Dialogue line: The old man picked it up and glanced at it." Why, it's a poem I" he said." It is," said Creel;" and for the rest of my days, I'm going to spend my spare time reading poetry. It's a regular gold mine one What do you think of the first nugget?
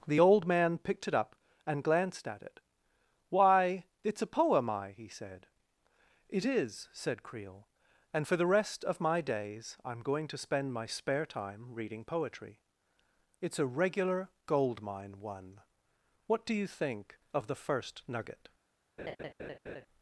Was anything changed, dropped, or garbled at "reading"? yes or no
no